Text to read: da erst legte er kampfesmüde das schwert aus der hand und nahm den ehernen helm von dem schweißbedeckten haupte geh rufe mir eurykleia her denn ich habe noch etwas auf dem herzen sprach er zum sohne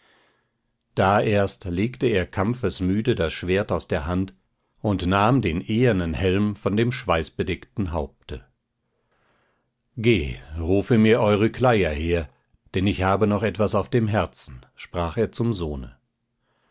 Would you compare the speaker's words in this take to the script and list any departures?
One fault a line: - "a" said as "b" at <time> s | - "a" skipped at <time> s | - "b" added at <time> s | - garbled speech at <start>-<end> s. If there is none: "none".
none